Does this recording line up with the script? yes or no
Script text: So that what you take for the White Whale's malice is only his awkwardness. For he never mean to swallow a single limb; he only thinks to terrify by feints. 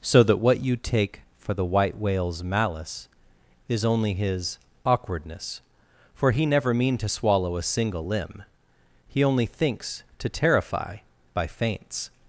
yes